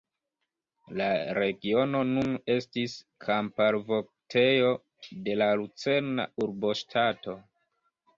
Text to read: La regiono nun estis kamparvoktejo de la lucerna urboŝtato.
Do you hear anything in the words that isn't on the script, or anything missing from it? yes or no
no